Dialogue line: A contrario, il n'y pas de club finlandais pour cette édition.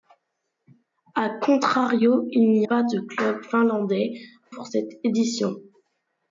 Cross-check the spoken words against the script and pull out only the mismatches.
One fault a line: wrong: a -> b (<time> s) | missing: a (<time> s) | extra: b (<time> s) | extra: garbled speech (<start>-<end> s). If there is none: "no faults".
no faults